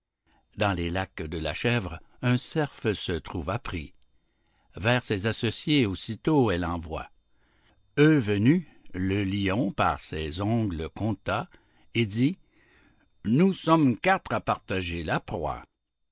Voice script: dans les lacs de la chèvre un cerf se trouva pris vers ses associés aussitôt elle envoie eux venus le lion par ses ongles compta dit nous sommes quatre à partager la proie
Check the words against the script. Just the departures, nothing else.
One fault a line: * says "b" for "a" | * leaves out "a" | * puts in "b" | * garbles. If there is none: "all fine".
* puts in "et"